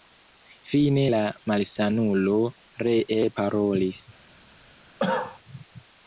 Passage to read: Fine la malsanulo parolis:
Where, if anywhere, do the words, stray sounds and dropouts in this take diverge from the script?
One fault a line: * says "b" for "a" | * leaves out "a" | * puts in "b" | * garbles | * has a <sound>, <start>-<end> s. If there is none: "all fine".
* puts in "ree"
* has a cough, 5.0-5.4 s